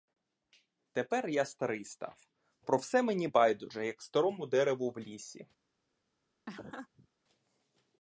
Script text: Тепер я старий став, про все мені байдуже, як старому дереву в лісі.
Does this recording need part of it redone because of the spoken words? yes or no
no